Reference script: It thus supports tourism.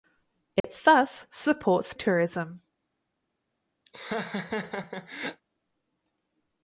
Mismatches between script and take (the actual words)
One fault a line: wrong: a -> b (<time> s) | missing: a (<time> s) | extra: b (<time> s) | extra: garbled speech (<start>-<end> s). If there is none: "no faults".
no faults